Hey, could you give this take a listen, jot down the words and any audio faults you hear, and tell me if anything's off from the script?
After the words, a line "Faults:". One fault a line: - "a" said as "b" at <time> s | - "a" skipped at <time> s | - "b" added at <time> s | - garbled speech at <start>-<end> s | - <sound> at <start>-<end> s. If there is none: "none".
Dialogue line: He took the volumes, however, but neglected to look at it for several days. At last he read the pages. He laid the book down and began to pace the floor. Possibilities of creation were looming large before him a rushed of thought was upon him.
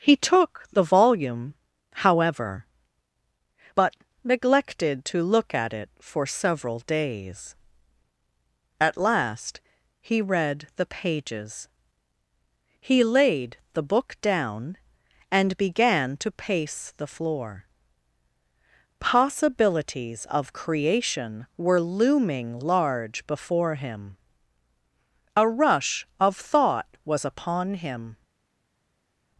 He took the volume, however, but neglected to look at it for several days. At last he read the pages. He laid the book down and began to pace the floor. Possibilities of creation were looming large before him a rush of thought was upon him.
Faults:
- "volumes" said as "volume" at 0.8 s
- "rushed" said as "rush" at 25.5 s